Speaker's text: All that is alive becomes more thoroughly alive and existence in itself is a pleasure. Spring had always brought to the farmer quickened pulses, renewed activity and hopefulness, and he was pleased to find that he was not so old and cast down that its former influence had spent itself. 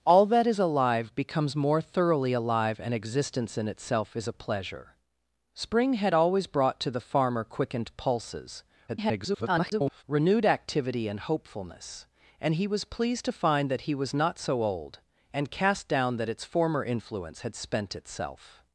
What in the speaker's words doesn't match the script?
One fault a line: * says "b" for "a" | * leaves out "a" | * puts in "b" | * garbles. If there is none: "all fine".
* garbles